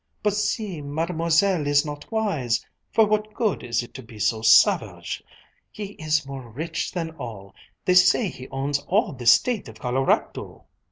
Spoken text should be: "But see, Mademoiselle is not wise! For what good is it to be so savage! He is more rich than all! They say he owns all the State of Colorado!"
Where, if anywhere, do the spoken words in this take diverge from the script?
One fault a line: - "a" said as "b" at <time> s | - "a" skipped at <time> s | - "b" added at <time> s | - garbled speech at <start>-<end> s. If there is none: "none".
none